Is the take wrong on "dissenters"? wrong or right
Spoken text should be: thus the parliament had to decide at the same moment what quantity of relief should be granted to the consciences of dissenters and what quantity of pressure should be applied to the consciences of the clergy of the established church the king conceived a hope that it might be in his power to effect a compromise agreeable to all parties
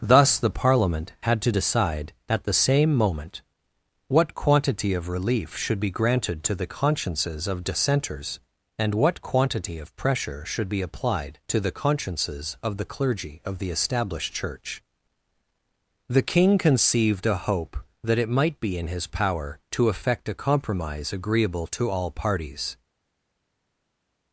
right